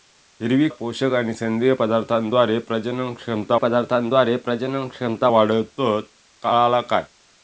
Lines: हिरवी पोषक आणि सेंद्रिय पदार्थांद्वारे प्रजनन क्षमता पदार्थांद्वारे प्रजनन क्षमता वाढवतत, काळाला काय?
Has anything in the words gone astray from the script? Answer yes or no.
no